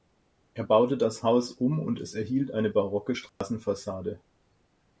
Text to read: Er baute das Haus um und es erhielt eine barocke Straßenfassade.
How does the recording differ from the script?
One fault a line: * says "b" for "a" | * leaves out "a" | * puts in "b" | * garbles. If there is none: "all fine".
all fine